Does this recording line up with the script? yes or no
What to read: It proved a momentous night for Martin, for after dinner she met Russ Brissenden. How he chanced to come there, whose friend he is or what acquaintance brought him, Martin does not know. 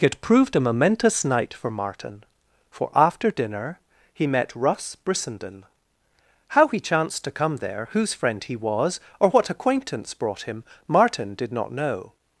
no